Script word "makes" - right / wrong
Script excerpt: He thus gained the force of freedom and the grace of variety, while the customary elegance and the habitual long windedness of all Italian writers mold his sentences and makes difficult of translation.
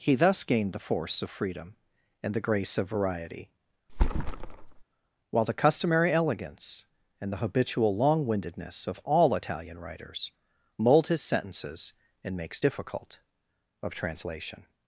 right